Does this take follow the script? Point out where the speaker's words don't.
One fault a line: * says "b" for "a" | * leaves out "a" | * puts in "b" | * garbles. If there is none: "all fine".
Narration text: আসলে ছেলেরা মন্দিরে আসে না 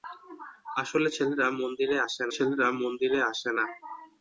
* puts in "ছেলেরা মন্দিরে আসে"